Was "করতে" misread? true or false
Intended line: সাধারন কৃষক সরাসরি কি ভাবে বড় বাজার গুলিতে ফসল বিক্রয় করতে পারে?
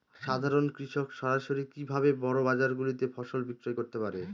false